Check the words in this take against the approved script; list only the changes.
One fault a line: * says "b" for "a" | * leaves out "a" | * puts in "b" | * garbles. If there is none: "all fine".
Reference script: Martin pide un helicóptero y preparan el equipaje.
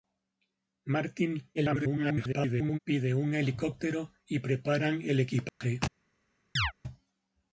* garbles